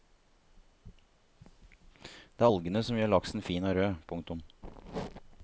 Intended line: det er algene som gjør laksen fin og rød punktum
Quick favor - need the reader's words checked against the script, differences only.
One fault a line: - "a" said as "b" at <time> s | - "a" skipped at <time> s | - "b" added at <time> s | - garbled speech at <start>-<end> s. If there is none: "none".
none